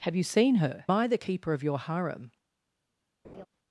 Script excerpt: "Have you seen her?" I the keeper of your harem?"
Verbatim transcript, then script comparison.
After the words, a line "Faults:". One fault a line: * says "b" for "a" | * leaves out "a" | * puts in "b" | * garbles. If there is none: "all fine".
"Have you seen her?" I the keeper of your harem?"
Faults:
all fine